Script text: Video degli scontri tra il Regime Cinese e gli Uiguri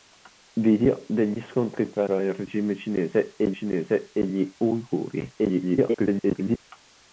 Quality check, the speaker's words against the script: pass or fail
fail